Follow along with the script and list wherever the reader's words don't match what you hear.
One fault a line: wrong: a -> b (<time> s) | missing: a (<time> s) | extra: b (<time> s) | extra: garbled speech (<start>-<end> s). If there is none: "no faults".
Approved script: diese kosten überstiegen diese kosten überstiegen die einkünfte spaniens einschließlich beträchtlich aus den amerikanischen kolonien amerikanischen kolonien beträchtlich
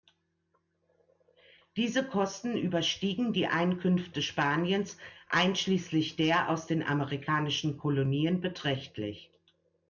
missing: diese kosten überstiegen (3.3 s)
wrong: beträchtlich -> der (6.2 s)
missing: amerikanischen kolonien (8.4 s)